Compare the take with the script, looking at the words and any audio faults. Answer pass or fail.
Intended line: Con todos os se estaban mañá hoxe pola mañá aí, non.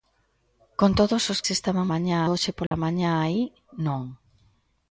fail